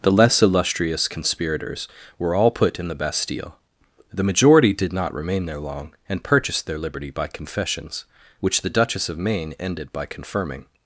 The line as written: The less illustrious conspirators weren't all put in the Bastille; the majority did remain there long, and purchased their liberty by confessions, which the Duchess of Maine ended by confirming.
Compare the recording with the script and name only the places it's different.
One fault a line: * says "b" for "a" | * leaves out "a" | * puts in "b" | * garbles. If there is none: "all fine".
* says "were" for "weren't"
* puts in "not"